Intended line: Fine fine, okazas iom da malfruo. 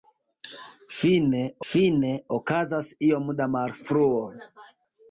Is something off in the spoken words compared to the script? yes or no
no